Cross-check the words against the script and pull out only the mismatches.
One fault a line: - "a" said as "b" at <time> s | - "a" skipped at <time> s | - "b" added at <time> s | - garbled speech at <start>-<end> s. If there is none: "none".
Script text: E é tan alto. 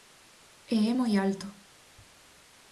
- "tan" said as "moi" at 1.0 s